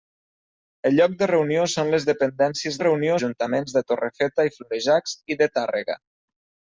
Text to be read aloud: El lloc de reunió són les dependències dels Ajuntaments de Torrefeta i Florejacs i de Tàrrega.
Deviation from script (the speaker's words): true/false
true